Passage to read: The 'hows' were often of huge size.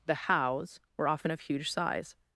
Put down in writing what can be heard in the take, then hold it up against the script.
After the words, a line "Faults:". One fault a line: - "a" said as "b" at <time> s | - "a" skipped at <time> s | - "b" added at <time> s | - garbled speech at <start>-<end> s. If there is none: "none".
The 'hows' were often of huge size.
Faults:
none